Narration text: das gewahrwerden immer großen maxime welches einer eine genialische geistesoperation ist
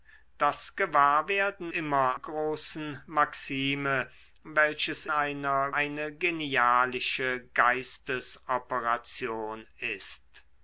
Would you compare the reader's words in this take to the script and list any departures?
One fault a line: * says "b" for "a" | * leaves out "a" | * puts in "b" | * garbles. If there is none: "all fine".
all fine